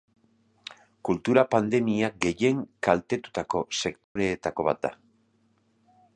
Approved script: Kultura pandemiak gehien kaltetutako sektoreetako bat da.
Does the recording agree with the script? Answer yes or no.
yes